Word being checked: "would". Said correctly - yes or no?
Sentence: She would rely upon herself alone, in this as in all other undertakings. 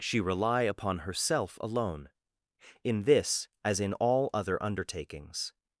no